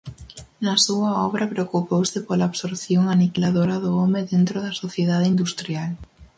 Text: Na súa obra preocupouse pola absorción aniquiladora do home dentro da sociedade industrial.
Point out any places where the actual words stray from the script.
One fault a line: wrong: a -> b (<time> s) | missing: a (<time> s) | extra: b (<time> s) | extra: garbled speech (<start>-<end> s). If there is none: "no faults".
no faults